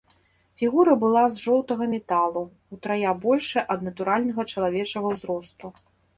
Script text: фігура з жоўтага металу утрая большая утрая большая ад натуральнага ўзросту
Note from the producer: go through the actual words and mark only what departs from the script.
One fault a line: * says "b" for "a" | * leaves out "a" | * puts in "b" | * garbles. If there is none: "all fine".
* puts in "была"
* leaves out "утрая большая"
* puts in "чалавечага"